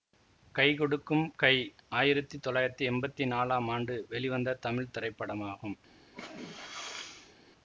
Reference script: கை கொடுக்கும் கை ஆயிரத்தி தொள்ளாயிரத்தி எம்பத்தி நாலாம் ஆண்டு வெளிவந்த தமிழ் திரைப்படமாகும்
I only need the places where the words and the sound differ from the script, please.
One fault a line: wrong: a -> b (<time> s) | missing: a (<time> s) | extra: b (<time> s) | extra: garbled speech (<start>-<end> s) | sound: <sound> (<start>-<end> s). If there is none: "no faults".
sound: sneeze (6.1-7.4 s)